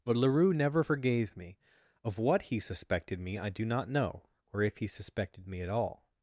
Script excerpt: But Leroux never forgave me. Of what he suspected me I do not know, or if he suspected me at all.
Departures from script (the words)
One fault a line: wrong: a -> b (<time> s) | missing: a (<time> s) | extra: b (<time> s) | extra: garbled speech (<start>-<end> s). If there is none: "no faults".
no faults